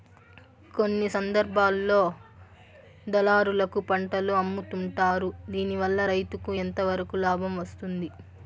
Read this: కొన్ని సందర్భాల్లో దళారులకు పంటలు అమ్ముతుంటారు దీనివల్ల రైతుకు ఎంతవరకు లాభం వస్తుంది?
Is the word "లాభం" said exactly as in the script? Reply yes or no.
yes